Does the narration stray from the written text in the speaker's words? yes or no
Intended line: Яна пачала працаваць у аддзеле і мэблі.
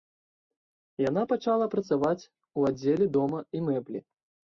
yes